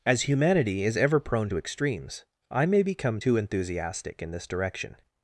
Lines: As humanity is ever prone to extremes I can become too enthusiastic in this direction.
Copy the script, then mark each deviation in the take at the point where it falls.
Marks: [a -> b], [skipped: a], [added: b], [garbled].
As humanity is ever prone to extremes I [can -> may] become too enthusiastic in this direction.